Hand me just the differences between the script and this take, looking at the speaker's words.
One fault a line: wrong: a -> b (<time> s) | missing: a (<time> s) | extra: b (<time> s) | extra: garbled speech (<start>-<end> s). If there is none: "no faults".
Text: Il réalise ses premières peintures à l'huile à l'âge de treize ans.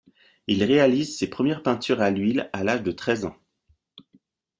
no faults